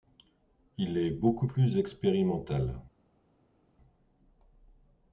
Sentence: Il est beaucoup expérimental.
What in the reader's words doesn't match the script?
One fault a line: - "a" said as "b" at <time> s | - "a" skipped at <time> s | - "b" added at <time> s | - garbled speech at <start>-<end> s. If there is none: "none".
- "plus" added at 1.4 s